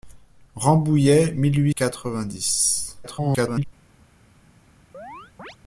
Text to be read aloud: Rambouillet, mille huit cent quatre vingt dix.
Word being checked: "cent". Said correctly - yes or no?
no